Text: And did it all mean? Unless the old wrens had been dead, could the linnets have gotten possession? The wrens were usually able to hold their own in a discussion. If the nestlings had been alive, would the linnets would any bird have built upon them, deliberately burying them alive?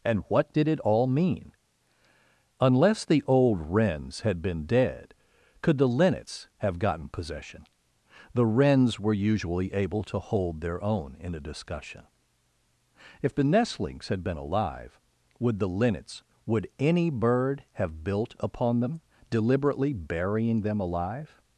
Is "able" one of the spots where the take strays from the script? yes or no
no